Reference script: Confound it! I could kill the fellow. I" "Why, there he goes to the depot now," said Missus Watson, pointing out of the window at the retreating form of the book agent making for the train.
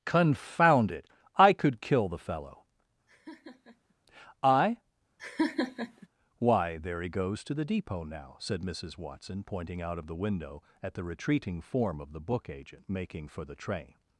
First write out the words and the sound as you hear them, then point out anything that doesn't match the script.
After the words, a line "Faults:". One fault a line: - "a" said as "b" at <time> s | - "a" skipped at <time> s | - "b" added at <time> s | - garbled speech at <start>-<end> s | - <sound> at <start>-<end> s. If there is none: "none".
Confound it! I could kill the fellow. I" "Why, there he goes to the depot now," said Missus Watson, pointing out of the window at the retreating form of the book agent making for the train.
Faults:
- laugh at 3.1-3.9 s
- laugh at 5.2-6.1 s